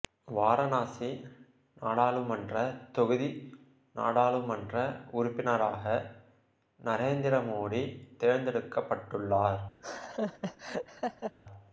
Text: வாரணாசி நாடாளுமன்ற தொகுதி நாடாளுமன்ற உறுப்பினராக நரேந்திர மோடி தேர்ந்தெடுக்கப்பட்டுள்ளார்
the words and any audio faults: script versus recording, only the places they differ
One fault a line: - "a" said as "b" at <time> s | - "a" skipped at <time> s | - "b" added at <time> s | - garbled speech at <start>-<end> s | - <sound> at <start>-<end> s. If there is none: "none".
- laugh at 9.8-11.4 s